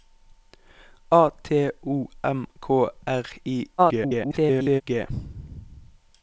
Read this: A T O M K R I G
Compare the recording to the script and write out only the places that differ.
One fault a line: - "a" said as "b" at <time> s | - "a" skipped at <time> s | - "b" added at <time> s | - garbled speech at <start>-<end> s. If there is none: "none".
- garbled speech at 3.8-4.8 s